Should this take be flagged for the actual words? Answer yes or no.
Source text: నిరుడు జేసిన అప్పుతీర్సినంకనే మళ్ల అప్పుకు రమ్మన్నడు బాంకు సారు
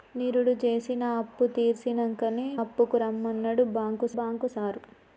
yes